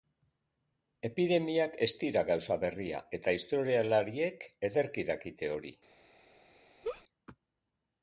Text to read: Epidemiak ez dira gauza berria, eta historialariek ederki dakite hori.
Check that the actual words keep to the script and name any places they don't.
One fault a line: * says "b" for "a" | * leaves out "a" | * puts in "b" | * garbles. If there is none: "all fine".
all fine